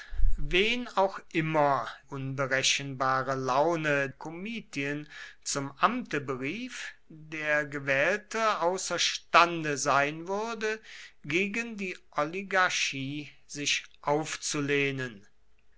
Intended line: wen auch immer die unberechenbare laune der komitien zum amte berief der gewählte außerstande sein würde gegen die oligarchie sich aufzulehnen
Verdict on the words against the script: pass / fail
fail